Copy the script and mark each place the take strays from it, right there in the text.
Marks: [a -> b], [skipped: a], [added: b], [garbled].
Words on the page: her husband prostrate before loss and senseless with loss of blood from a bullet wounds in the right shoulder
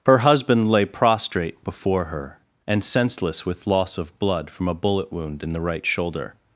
her husband [added: lay] prostrate before [loss -> her] and senseless with loss of blood from a bullet [wounds -> wound] in the right shoulder